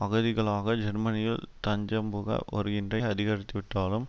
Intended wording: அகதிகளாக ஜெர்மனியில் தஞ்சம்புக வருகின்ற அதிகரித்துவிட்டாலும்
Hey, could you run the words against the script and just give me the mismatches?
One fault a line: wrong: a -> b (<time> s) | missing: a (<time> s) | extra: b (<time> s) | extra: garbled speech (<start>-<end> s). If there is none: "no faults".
no faults